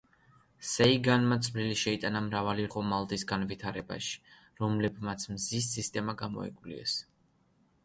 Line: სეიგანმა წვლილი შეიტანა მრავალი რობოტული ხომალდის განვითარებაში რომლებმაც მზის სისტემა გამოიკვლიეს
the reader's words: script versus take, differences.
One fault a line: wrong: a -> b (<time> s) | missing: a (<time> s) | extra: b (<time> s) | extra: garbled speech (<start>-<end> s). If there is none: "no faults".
missing: რობოტული (2.6 s)